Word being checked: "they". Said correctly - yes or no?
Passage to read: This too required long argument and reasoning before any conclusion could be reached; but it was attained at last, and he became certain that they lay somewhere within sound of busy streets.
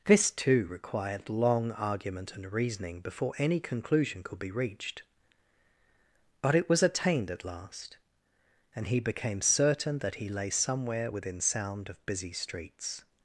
no